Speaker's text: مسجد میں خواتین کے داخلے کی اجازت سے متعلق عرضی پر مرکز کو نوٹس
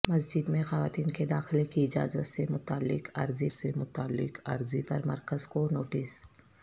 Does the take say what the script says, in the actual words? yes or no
no